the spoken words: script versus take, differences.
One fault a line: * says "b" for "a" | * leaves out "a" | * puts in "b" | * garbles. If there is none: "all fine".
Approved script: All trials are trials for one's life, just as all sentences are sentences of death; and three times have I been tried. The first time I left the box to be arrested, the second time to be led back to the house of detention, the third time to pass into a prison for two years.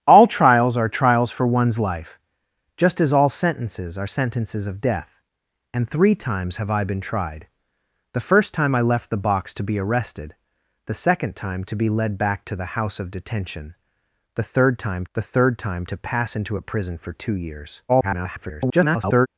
* puts in "the third time"
* garbles